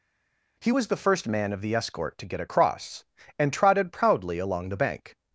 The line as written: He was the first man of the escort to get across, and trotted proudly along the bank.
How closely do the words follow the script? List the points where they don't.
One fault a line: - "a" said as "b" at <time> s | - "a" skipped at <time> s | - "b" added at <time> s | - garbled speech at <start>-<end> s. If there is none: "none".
none